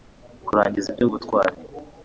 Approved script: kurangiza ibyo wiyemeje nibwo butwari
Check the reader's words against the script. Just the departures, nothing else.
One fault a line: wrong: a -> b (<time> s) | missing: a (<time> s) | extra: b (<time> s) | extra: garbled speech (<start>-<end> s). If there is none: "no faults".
missing: wiyemeje nibwo (1.1 s)